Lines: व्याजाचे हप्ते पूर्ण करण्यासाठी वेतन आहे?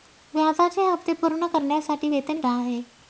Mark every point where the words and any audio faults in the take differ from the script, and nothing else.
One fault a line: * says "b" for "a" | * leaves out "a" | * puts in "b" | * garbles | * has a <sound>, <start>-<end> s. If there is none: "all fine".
all fine